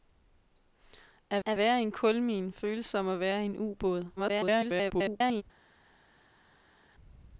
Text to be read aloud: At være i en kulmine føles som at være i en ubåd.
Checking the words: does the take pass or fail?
fail